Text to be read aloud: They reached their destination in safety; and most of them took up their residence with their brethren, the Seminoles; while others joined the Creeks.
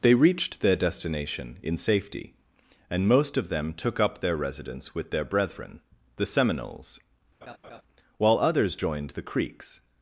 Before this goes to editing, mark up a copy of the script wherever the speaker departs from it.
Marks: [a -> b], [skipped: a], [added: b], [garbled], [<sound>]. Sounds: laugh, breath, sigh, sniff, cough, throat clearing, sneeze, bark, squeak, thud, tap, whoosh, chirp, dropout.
They reached their destination in safety; and most of them took up their residence with their brethren, the Seminoles; [laugh] while others joined the Creeks.